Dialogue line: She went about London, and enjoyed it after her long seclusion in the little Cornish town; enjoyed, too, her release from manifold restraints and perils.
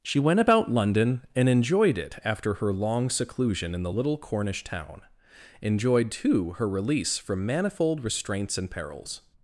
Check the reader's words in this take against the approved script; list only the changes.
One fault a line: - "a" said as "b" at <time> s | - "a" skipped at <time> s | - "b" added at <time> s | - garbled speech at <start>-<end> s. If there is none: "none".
none